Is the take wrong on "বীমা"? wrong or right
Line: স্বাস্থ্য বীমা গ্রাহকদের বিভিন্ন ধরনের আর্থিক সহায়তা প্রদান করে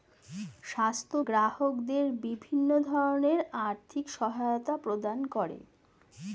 wrong